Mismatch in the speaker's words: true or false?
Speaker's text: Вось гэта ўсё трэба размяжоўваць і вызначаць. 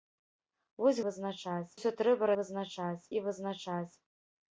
true